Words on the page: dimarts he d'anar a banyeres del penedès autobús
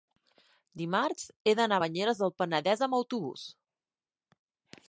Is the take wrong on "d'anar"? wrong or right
right